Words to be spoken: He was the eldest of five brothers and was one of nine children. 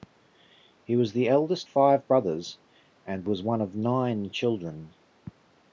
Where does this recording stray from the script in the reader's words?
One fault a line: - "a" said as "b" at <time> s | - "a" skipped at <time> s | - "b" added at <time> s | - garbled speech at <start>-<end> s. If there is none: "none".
- "of" skipped at 1.7 s